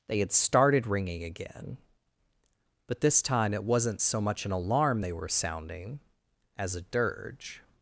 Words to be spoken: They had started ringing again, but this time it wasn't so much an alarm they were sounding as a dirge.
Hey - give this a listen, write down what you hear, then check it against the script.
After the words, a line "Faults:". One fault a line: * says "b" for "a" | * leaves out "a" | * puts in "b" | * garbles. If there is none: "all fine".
They had started ringing again, but this time it wasn't so much an alarm they were sounding as a dirge.
Faults:
all fine